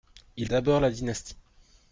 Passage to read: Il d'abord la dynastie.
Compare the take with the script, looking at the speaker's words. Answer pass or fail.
pass